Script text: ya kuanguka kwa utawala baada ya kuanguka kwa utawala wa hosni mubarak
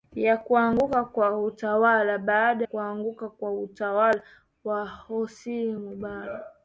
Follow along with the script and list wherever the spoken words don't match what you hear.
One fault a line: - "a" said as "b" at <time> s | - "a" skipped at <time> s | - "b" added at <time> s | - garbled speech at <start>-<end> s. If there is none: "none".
- "ya" skipped at 2.6 s